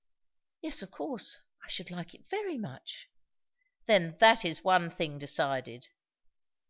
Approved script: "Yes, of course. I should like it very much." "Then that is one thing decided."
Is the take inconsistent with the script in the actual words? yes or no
no